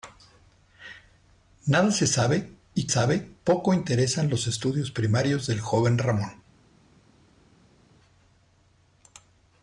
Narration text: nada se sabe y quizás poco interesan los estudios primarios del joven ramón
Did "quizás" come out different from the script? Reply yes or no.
yes